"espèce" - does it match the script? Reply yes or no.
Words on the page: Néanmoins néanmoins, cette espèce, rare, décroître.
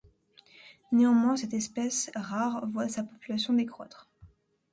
yes